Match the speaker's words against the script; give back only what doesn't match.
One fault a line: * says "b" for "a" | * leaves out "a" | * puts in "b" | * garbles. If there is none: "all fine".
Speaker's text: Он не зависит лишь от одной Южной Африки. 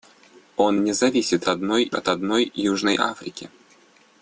* says "одной" for "лишь"